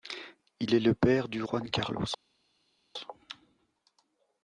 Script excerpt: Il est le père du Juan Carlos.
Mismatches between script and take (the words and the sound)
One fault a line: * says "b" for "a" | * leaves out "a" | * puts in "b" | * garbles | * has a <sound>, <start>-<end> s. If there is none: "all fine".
all fine